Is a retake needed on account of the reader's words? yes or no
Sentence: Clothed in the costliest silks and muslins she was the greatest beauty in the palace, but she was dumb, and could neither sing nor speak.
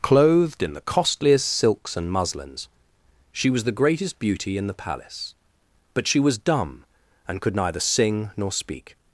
no